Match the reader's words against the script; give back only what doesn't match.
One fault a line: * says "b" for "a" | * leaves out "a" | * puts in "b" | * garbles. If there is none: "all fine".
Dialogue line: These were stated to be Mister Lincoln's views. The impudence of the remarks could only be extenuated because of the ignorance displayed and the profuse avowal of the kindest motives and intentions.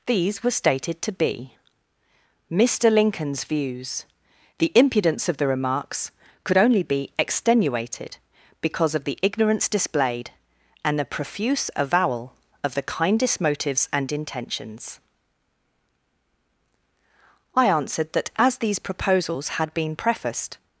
* puts in "I answered that as these proposals had been prefaced"